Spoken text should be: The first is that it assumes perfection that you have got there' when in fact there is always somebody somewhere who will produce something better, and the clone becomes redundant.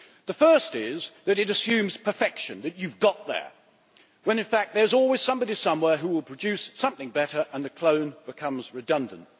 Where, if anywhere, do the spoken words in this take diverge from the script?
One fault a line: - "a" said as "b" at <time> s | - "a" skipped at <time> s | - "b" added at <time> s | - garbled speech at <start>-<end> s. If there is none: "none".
none